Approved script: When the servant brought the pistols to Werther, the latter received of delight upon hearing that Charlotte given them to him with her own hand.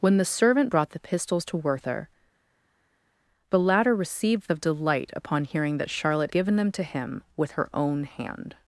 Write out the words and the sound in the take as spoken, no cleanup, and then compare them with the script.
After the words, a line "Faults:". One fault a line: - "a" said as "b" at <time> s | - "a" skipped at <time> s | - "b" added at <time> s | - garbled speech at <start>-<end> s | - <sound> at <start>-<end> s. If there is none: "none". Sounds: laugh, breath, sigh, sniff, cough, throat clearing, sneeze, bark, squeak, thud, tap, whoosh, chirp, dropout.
When the servant brought the pistols to Werther, the latter received of delight upon hearing that Charlotte given them to him with her own hand.
Faults:
none